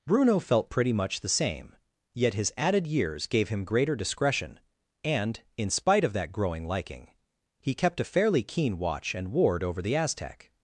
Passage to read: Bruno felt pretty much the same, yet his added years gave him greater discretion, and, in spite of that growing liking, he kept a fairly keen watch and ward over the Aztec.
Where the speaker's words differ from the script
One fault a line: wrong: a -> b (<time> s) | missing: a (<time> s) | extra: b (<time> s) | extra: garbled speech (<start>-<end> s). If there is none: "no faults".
no faults